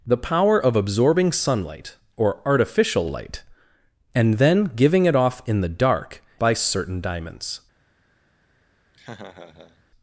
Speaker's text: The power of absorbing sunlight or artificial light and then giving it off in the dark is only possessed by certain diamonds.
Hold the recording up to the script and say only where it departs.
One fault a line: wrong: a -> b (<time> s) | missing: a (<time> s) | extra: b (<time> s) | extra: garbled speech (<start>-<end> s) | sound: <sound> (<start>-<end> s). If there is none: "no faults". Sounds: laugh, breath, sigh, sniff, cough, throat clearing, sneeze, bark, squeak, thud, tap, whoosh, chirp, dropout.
missing: is only possessed (6.2 s)
sound: laugh (8.9-9.8 s)